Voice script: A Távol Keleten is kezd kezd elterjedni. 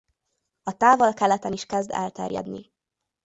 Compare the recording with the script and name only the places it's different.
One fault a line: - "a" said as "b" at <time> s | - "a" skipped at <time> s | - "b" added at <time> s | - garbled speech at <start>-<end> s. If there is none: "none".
- "kezd" skipped at 1.9 s